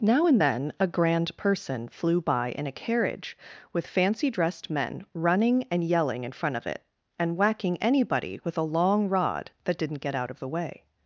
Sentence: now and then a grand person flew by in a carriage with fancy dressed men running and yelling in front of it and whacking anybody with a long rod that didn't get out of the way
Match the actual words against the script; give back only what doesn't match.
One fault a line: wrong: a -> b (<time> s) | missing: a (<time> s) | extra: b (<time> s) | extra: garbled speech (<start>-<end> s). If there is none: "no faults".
no faults